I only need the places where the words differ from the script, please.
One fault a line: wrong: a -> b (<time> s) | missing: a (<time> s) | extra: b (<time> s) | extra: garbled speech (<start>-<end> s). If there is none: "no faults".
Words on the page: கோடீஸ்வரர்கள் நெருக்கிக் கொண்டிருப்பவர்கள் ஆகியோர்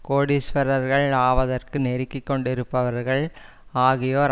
extra: ஆவதற்கு (1.2 s)